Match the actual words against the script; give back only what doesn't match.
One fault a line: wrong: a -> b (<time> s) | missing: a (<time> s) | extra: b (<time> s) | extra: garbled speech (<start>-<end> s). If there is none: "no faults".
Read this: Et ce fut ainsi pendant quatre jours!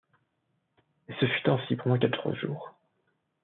no faults